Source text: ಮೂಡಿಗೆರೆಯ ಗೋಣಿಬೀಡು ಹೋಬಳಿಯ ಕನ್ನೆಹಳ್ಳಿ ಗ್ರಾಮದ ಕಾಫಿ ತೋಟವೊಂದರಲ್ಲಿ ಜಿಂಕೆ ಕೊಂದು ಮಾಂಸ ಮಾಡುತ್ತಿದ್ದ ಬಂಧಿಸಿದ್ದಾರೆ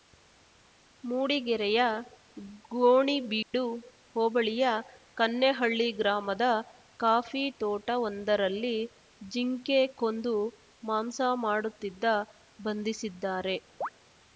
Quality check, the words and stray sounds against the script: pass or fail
fail